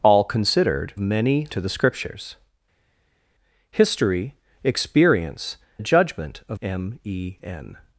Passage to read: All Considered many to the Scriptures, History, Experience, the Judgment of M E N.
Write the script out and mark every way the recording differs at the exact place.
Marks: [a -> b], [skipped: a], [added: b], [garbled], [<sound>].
All Considered many to the Scriptures, History, Experience, the Judgment of M E N.